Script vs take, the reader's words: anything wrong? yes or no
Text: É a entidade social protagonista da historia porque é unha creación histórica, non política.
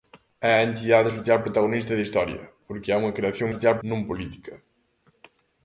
yes